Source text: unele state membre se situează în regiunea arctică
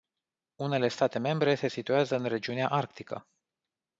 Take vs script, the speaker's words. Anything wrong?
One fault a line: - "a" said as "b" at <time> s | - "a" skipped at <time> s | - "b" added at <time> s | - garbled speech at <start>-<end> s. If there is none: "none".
none